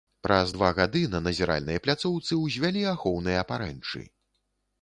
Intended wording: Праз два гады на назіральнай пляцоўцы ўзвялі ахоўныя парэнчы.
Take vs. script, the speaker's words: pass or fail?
pass